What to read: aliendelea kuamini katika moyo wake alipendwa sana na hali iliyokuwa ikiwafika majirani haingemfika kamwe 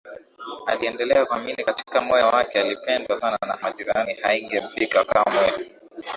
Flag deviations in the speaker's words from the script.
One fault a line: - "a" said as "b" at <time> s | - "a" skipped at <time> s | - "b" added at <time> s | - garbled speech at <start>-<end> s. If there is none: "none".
- "hali iliyokuwa ikiwafika" skipped at 3.6 s